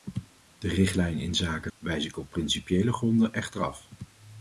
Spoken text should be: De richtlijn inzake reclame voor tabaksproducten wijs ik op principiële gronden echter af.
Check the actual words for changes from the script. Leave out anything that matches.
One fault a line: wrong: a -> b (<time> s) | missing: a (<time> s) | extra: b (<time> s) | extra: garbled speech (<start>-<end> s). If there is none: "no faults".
missing: reclame voor tabaksproducten (1.7 s)